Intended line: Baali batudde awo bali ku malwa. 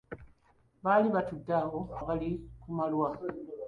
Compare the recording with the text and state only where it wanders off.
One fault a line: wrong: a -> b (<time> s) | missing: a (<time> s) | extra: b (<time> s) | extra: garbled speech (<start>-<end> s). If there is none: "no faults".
no faults